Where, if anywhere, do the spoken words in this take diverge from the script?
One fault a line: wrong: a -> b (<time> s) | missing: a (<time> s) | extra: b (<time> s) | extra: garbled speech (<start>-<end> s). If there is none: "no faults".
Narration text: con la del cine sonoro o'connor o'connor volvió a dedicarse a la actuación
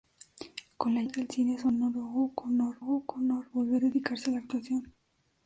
no faults